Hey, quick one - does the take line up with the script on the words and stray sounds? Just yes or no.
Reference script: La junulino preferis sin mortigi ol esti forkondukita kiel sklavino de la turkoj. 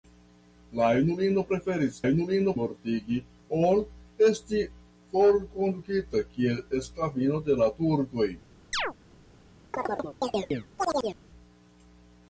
no